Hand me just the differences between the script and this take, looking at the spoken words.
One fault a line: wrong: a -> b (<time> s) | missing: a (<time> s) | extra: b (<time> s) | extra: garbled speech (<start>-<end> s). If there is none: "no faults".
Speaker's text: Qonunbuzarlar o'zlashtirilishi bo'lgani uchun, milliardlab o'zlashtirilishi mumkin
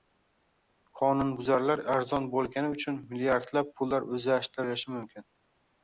wrong: o'zlashtirilishi -> arzon (2.0 s)
extra: pullar (3.8 s)